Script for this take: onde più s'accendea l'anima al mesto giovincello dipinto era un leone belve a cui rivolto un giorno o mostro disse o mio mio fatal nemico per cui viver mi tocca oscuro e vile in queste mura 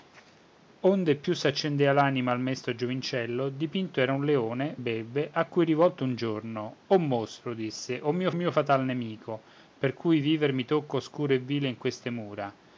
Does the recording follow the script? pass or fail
pass